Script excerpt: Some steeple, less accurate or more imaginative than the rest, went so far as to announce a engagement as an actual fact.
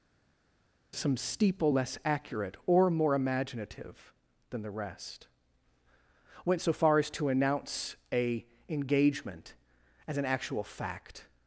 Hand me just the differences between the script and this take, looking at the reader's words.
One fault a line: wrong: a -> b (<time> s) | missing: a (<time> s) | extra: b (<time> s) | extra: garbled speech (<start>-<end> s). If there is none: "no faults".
no faults